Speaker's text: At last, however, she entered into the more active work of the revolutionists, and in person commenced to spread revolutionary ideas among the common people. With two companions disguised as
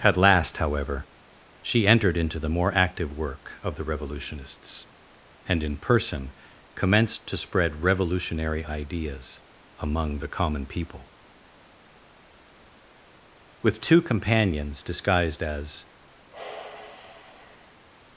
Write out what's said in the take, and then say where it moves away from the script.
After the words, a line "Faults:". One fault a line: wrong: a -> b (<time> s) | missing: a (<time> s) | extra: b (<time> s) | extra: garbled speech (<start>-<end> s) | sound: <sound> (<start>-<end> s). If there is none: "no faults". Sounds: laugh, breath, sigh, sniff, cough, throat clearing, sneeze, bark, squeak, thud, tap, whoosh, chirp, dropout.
At last, however, she entered into the more active work of the revolutionists, and in person commenced to spread revolutionary ideas among the common people. With two companions disguised as
Faults:
sound: sigh (16.3-17.9 s)